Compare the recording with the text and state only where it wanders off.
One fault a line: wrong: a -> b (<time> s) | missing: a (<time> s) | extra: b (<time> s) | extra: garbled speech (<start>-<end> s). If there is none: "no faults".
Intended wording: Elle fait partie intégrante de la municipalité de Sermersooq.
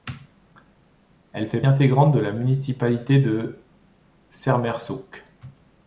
missing: partie (1.6 s)